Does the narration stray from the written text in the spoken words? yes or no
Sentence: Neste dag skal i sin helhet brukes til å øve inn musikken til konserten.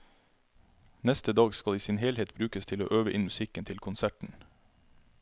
no